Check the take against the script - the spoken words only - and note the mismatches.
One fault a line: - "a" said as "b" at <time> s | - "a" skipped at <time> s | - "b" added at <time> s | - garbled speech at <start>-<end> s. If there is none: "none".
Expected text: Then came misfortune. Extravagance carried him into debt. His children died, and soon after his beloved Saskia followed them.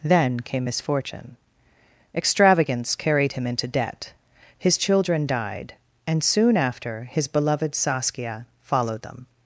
none